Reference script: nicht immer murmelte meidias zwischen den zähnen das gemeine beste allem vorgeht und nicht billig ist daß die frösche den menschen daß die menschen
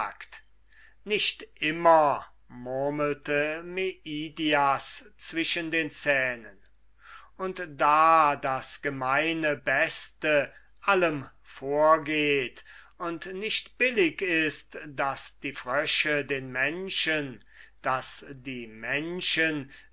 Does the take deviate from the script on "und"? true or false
false